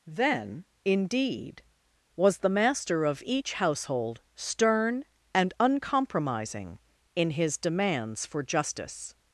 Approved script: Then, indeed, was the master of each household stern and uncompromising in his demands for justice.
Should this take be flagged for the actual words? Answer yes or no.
no